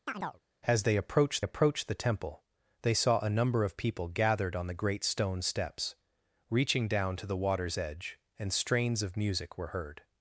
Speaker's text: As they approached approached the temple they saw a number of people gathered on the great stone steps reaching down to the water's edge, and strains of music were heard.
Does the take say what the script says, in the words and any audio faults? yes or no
no